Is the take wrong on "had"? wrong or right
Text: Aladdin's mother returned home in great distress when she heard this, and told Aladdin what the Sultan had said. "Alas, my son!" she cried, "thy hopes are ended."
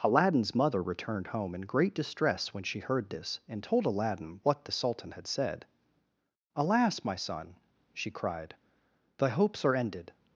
right